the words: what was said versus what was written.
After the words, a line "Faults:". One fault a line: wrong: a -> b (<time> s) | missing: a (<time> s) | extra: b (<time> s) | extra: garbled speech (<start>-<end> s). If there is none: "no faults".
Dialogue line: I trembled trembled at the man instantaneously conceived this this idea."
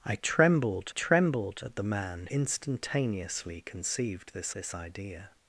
I trembled trembled at the man instantaneously conceived this this idea."
Faults:
no faults